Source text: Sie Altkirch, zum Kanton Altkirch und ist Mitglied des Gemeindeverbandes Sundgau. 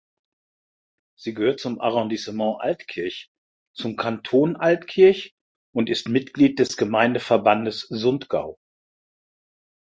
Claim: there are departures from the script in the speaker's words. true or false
true